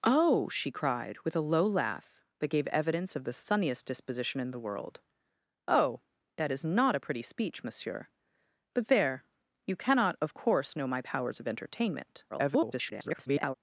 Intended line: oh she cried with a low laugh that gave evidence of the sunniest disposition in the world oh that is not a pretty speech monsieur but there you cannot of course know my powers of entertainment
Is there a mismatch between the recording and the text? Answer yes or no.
yes